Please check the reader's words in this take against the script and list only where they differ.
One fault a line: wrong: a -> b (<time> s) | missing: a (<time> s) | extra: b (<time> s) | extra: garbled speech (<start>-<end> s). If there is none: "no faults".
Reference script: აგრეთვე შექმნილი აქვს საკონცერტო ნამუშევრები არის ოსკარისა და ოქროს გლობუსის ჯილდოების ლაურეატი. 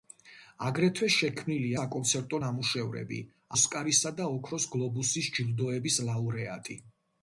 missing: აქვს (1.7 s)
missing: არის (3.2 s)